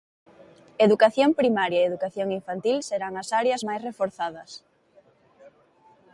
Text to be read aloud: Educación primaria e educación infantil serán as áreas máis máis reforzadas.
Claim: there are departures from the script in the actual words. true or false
true